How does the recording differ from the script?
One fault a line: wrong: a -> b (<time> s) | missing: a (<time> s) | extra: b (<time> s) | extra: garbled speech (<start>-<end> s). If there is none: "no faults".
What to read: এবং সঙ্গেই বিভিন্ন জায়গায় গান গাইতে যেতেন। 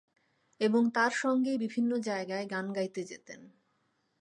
extra: তার (0.9 s)